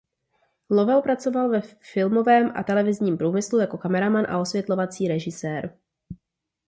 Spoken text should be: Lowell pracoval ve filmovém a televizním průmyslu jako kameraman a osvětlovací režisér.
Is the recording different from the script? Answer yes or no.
no